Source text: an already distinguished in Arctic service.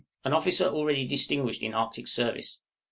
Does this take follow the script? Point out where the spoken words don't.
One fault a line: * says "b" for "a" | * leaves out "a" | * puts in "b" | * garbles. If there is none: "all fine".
* puts in "officer"